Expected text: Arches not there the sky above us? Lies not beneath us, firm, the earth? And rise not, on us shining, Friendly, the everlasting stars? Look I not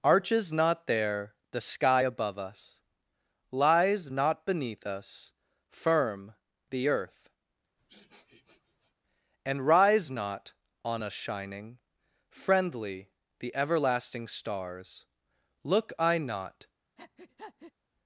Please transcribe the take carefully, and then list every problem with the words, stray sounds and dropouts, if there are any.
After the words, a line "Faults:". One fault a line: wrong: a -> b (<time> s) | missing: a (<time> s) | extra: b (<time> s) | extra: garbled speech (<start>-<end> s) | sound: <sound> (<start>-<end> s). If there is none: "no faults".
Arches not there the sky above us? Lies not beneath us, firm, the earth? And rise not, on us shining, Friendly, the everlasting stars? Look I not
Faults:
sound: sniff (7.8-8.9 s)
sound: breath (17.0-17.7 s)